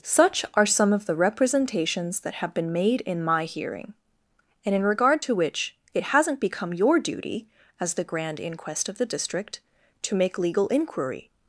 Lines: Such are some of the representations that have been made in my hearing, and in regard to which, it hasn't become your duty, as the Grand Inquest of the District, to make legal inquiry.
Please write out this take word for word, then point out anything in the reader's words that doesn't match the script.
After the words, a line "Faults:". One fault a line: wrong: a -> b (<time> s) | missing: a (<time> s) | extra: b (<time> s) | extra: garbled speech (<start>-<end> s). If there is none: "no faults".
Such are some of the representations that have been made in my hearing, and in regard to which, it hasn't become your duty, as the Grand Inquest of the District, to make legal inquiry.
Faults:
no faults